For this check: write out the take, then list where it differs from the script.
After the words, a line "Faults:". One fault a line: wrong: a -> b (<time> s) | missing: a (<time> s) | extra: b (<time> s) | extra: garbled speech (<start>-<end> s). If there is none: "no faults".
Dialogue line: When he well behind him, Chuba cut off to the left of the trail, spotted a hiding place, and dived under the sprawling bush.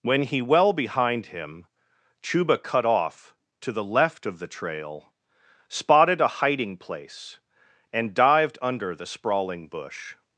When he well behind him, Chuba cut off to the left of the trail, spotted a hiding place, and dived under the sprawling bush.
Faults:
no faults